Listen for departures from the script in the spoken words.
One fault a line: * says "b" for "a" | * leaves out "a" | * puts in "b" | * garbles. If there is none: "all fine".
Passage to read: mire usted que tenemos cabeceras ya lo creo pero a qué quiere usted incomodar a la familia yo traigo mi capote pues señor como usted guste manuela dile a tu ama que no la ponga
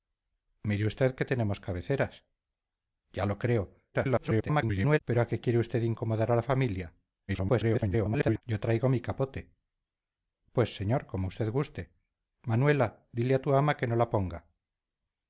* garbles
* garbles